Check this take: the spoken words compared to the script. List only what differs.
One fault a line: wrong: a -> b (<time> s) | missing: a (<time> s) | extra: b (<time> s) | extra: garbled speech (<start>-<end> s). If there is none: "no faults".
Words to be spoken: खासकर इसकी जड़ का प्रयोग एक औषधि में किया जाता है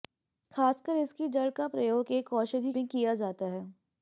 no faults